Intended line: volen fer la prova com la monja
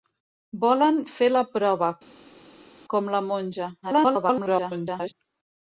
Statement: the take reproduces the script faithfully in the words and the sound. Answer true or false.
false